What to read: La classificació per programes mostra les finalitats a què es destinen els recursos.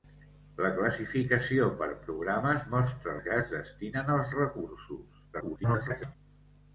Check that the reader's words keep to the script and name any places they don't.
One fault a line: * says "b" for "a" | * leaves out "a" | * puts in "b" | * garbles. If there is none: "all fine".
* leaves out "les finalitats"
* garbles